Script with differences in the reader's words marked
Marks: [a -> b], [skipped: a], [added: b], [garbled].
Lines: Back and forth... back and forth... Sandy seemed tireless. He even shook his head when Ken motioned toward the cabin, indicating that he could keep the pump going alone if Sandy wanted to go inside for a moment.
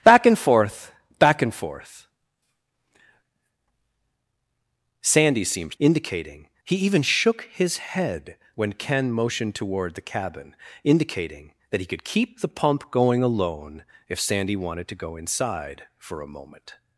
Back and forth... back and forth... Sandy seemed [tireless. -> indicating] He even shook his head when Ken motioned toward the cabin, indicating that he could keep the pump going alone if Sandy wanted to go inside for a moment.